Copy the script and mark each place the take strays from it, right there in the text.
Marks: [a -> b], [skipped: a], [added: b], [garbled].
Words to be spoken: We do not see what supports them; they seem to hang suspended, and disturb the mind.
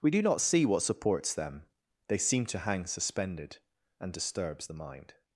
We do not see what supports them; they seem to hang suspended, and [disturb -> disturbs] the mind.